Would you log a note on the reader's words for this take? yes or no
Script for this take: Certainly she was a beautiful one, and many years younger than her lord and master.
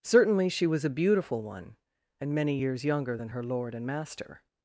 no